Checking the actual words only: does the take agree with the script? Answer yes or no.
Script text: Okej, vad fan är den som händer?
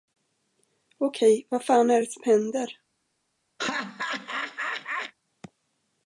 no